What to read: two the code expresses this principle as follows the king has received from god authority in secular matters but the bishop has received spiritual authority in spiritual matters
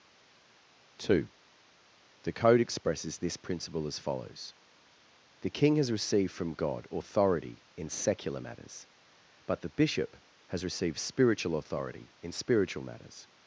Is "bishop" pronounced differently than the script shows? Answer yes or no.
no